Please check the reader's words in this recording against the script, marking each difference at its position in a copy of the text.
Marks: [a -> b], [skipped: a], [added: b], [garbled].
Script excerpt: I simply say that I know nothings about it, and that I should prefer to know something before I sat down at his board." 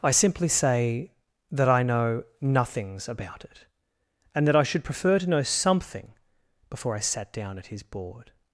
I simply say that I know nothings about it, and that I should prefer to know something before I sat down at his board."